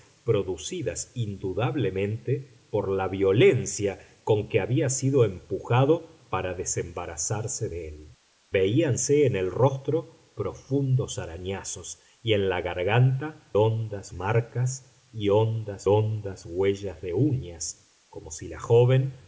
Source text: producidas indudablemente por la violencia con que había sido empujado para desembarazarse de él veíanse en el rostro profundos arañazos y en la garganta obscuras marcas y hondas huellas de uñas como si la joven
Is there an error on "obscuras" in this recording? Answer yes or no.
yes